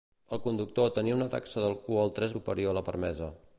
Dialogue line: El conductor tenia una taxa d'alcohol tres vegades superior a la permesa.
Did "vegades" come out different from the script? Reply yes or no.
yes